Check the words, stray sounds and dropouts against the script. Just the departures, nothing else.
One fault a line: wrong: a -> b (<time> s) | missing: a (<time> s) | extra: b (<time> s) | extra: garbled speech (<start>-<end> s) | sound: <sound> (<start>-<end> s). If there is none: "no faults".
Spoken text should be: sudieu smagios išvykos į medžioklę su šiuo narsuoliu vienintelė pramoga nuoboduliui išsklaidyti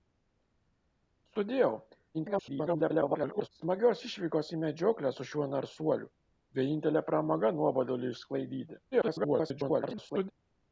extra: garbled speech (2.1-3.5 s)
extra: garbled speech (8.9-10.3 s)